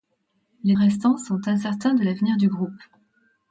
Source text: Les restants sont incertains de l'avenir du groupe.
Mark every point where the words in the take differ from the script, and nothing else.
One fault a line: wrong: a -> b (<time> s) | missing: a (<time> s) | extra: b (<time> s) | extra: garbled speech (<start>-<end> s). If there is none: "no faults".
no faults